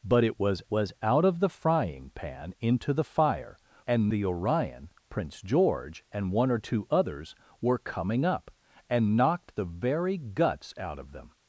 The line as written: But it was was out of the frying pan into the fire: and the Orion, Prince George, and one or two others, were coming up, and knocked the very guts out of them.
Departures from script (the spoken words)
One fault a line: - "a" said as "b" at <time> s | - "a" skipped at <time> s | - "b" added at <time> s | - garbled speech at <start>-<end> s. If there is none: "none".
none